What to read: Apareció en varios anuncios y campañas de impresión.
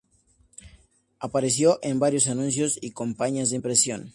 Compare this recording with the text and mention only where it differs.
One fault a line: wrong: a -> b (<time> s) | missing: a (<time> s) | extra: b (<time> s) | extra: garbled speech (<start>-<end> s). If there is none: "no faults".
no faults